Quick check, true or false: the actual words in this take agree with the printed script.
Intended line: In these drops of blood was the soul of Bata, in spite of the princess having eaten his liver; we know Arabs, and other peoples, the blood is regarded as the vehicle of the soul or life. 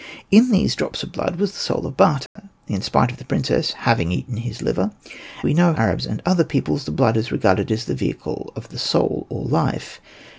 true